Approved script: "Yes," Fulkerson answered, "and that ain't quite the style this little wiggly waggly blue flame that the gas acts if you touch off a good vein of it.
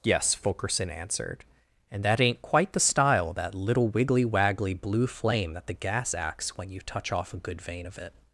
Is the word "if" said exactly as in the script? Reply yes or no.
no